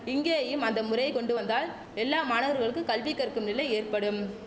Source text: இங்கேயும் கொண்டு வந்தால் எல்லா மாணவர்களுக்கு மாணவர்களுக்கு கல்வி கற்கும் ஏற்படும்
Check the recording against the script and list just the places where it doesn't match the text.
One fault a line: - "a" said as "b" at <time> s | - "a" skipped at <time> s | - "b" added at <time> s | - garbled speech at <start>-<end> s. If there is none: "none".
- "அந்த முறையை" added at 0.7 s
- "மாணவர்களுக்கு" skipped at 2.8 s
- "நிலை" added at 3.5 s